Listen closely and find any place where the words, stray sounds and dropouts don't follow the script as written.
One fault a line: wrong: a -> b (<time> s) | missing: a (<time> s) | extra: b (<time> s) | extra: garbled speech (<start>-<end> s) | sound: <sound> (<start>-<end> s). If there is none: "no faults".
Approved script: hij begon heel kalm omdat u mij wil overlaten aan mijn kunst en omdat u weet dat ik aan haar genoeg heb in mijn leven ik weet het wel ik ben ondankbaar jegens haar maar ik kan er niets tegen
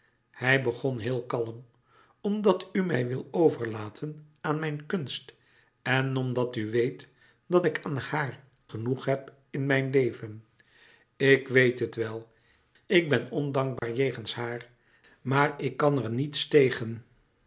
sound: dropout (13.8-13.8 s)